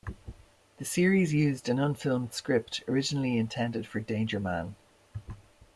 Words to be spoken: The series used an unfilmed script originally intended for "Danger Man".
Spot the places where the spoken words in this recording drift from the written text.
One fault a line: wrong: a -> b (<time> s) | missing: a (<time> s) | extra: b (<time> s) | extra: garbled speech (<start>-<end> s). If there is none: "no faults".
no faults